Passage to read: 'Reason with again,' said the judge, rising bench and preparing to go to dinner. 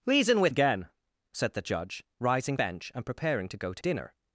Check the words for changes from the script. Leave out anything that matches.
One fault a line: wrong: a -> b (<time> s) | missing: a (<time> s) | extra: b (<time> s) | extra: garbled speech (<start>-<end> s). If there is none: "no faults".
no faults